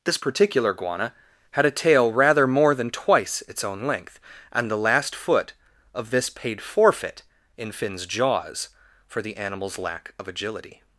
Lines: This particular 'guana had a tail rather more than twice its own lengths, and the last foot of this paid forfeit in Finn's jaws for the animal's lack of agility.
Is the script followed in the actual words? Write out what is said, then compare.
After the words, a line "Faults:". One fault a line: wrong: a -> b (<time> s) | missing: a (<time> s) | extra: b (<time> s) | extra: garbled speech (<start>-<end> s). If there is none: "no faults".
This particular 'guana had a tail rather more than twice its own length, and the last foot of this paid forfeit in Finn's jaws for the animal's lack of agility.
Faults:
wrong: lengths -> length (3.9 s)